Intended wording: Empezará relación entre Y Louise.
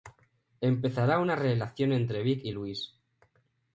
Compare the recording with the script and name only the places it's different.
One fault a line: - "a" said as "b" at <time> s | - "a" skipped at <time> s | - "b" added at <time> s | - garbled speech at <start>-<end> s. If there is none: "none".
- "una" added at 1.2 s
- "Vic" added at 2.2 s